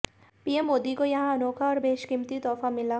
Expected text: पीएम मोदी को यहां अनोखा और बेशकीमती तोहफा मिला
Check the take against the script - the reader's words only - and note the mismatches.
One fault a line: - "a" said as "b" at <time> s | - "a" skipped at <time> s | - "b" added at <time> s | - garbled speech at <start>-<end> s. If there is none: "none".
none